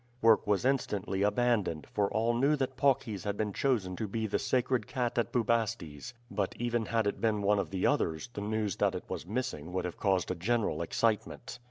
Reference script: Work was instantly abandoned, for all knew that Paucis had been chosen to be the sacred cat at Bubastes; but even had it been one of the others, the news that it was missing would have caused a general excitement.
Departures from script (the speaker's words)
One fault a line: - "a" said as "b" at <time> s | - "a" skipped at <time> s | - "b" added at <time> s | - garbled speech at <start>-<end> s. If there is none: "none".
none